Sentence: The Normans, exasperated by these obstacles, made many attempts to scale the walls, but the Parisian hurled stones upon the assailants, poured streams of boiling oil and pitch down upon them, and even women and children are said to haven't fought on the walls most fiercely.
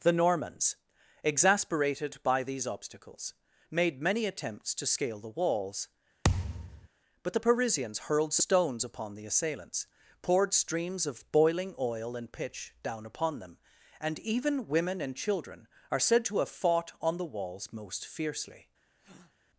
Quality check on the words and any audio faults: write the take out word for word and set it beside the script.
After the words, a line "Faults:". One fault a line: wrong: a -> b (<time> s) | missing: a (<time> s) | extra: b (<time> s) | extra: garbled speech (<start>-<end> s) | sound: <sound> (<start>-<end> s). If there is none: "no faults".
The Normans, exasperated by these obstacles, made many attempts to scale the walls, but the Parisians hurled stones upon the assailants, poured streams of boiling oil and pitch down upon them, and even women and children are said to have fought on the walls most fiercely.
Faults:
sound: thud (6.2-6.9 s)
wrong: Parisian -> Parisians (7.4 s)
wrong: haven't -> have (16.4 s)
sound: breath (19.0-19.3 s)